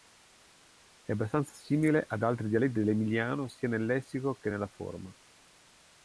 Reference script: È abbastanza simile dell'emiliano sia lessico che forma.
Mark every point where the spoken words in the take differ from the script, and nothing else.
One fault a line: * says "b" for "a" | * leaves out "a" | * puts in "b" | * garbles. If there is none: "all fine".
* puts in "ad altri dialetti"
* puts in "nel"
* puts in "nella"